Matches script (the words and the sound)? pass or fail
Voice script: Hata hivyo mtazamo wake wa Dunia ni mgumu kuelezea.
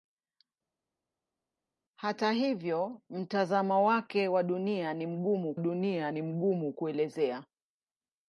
fail